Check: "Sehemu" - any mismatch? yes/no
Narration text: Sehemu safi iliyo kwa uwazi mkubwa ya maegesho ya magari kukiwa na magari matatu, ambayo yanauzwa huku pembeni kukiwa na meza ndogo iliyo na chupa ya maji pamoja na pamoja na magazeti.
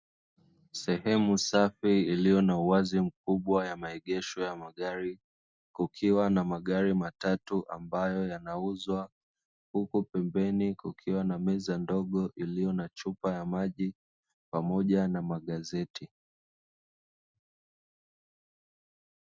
no